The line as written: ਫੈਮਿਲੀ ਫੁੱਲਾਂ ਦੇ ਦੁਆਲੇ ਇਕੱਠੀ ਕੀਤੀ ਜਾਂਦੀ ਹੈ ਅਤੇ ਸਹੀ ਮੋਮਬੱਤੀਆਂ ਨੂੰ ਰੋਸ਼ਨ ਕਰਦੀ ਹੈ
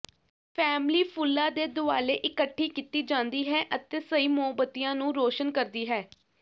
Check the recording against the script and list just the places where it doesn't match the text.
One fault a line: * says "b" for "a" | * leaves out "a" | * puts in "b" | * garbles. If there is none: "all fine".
all fine